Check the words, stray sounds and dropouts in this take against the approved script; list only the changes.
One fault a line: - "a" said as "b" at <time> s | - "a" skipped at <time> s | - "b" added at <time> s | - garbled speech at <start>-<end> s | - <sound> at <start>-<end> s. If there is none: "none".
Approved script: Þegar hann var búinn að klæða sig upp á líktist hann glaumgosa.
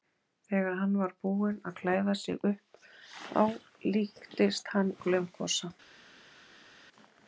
none